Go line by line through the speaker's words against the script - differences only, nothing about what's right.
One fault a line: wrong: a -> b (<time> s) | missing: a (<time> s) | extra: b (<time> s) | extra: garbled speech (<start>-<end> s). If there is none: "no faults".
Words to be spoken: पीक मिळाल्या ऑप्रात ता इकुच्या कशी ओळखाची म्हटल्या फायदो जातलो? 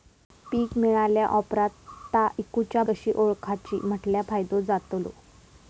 no faults